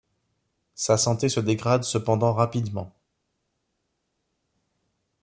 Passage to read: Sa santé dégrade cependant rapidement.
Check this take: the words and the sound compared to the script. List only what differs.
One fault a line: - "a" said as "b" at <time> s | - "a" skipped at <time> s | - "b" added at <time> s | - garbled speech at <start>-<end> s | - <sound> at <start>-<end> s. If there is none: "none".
- "se" added at 1.3 s